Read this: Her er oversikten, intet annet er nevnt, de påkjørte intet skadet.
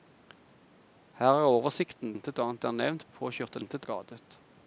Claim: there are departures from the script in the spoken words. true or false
false